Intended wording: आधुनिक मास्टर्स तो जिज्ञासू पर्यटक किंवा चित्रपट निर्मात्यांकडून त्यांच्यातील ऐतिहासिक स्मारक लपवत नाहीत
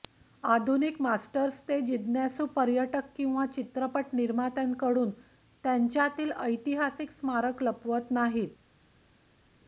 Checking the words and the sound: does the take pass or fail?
fail